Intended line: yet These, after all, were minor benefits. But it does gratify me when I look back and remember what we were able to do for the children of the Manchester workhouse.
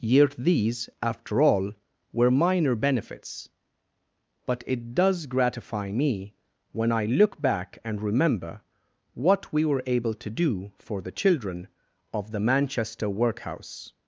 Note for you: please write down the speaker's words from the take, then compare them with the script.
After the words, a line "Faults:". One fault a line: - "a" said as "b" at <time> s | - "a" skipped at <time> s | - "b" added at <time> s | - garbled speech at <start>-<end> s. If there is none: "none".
yet These, after all, were minor benefits. But it does gratify me when I look back and remember what we were able to do for the children of the Manchester workhouse.
Faults:
none